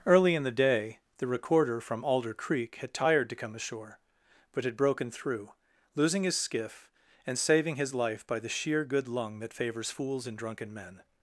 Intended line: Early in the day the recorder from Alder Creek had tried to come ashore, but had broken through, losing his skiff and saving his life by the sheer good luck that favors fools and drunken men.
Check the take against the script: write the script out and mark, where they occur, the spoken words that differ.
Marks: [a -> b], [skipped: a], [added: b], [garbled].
Early in the day the recorder from Alder Creek had [tried -> tired] to come ashore, but had broken through, losing his skiff and saving his life by the sheer good [luck -> lung] that favors fools and drunken men.